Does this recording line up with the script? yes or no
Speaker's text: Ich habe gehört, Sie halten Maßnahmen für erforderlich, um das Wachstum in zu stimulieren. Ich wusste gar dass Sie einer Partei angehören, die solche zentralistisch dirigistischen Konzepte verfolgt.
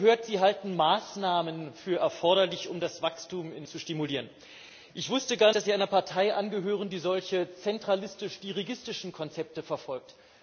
yes